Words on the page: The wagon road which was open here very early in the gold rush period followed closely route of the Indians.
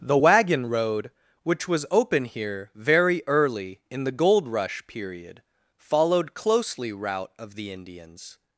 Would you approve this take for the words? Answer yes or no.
yes